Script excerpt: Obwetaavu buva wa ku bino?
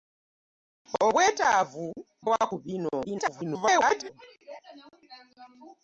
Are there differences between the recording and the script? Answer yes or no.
yes